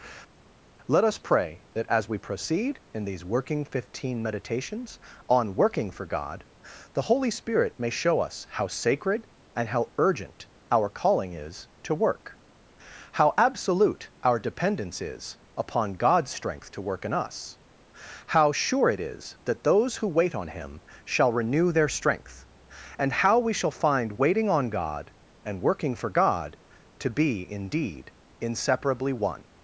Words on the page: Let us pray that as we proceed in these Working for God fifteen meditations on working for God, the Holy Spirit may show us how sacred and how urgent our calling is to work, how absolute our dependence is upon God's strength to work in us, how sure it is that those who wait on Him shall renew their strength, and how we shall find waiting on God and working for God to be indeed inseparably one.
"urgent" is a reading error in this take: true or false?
false